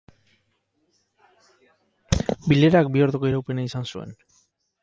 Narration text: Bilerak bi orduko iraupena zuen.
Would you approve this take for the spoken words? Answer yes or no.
no